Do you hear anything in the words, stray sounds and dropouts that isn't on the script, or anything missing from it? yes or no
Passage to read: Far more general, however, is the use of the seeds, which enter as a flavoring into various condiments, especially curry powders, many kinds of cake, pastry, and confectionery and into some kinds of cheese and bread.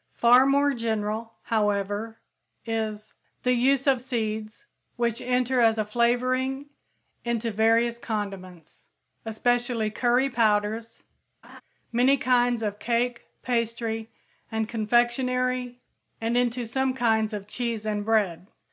yes